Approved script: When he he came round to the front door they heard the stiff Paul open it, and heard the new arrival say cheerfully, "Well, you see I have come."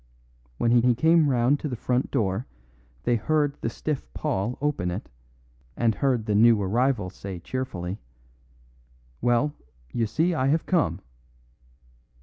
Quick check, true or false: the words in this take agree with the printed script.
true